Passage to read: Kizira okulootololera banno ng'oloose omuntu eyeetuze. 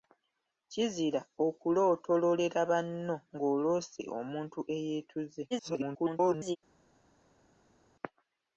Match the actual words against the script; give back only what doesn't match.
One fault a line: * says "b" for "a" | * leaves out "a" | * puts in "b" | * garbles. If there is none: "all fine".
* garbles